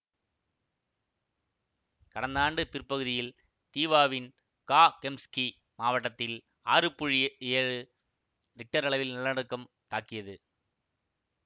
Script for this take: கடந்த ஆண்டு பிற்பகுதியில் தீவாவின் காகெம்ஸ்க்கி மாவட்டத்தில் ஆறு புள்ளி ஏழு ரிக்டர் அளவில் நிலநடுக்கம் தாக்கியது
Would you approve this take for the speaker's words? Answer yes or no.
yes